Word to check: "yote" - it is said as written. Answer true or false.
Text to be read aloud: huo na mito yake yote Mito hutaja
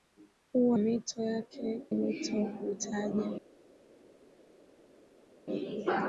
false